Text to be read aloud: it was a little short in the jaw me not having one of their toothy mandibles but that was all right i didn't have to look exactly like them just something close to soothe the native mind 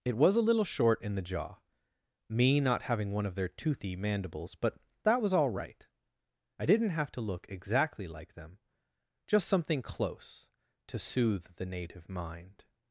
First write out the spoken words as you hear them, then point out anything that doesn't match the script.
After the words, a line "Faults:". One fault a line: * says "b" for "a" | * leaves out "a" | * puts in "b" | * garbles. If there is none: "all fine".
it was a little short in the jaw me not having one of their toothy mandibles but that was all right i didn't have to look exactly like them just something close to soothe the native mind
Faults:
all fine